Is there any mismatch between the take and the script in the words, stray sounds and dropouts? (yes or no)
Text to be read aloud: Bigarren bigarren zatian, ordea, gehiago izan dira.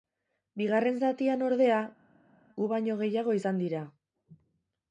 yes